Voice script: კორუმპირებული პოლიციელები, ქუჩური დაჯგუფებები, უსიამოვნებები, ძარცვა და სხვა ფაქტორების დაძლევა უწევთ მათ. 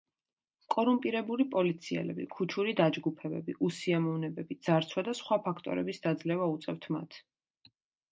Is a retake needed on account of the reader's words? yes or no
no